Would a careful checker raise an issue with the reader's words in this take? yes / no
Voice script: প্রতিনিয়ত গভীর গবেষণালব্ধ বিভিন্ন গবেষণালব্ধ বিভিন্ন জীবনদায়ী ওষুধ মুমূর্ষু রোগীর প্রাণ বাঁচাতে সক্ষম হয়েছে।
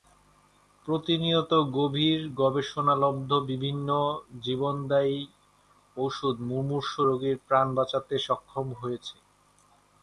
yes